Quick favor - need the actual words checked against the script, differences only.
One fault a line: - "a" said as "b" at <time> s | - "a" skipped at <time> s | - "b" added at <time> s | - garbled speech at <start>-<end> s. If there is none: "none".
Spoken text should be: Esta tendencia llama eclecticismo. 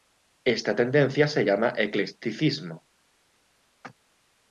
- "se" added at 1.3 s